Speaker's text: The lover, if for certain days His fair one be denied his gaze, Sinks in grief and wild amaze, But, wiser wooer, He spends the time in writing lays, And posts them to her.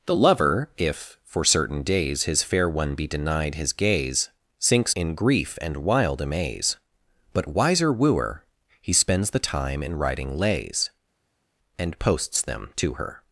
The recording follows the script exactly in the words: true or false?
true